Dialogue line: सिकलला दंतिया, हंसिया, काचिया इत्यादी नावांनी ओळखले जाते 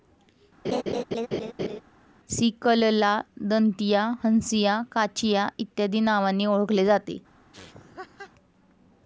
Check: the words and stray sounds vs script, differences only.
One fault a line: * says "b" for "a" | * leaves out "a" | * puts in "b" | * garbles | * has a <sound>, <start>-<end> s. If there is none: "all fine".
* has a laugh, 0.6-1.8 s
* has a laugh, 7.5-8.3 s